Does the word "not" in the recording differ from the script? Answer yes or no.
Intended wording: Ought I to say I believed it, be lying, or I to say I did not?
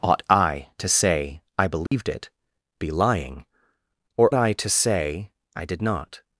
no